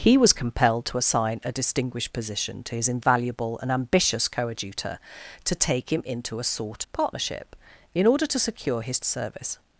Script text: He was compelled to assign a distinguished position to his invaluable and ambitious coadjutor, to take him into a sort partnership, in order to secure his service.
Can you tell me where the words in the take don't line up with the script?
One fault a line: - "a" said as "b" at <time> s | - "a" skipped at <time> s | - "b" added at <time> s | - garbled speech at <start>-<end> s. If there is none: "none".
none